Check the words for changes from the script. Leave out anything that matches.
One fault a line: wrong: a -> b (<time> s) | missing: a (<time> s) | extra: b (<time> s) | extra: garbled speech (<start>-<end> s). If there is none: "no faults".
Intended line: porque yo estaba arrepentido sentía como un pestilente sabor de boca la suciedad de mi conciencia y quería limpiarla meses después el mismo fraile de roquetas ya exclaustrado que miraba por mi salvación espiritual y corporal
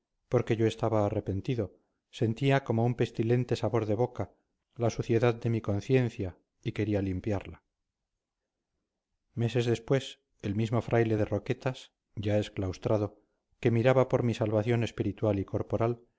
no faults